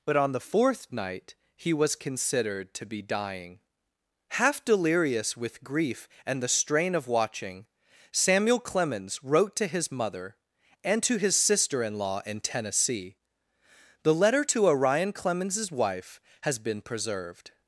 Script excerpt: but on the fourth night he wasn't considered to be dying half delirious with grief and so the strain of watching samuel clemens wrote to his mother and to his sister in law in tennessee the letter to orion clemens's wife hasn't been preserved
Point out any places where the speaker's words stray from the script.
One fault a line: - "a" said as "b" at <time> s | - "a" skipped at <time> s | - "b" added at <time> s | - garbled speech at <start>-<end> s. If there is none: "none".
- "wasn't" said as "was" at 1.7 s
- "so" skipped at 6.4 s
- "hasn't" said as "has" at 16.4 s